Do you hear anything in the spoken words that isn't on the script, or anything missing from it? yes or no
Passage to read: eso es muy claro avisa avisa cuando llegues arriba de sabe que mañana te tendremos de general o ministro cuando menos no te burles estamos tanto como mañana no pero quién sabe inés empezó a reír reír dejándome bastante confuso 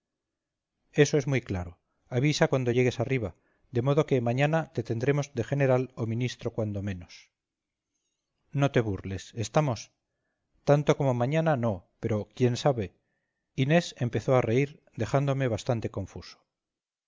yes